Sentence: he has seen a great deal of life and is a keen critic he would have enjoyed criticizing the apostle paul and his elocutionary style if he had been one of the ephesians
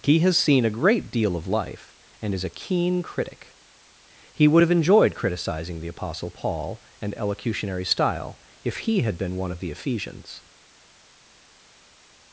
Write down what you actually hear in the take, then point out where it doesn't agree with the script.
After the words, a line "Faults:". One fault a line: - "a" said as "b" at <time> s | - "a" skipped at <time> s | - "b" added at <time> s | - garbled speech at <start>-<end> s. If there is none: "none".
he has seen a great deal of life and is a keen critic he would have enjoyed criticizing the apostle paul and elocutionary style if he had been one of the ephesians
Faults:
- "his" skipped at 7.2 s